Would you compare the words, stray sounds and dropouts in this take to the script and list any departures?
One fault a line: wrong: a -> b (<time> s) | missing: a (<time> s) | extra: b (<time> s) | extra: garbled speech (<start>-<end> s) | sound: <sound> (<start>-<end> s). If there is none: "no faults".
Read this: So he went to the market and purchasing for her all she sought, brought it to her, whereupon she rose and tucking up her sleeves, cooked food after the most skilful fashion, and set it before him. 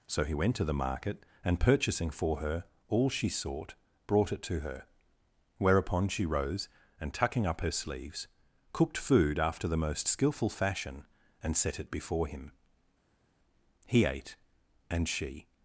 extra: He ate and she (13.9 s)